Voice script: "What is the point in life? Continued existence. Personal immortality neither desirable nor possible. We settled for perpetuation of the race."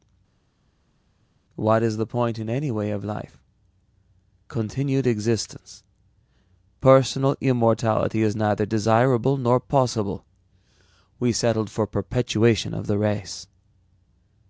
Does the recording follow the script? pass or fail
fail